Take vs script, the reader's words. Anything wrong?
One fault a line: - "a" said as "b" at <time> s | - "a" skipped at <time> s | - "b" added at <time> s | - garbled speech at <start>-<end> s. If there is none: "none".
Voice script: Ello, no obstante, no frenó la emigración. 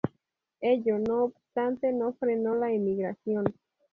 none